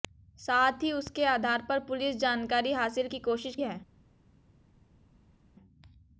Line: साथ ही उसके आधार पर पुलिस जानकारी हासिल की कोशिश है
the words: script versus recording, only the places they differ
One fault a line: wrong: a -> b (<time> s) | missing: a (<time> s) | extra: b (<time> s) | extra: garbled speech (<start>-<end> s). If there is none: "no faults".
no faults